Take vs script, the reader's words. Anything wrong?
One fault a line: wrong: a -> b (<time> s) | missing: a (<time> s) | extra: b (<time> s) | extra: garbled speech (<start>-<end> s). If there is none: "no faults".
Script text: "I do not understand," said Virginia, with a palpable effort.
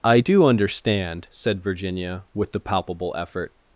missing: not (0.4 s)
wrong: a -> the (2.5 s)